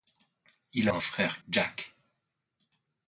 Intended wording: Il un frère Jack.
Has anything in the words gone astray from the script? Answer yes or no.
no